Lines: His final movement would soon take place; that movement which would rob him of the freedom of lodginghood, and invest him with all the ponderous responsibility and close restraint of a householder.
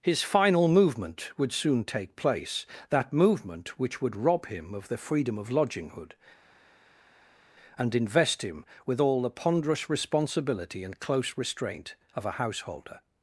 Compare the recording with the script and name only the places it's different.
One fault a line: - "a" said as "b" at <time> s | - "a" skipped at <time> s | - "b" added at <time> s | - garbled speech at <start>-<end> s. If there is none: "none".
none